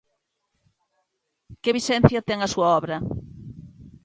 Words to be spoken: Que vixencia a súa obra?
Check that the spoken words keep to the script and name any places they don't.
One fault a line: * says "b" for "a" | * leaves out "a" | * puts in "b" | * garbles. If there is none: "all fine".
* puts in "ten"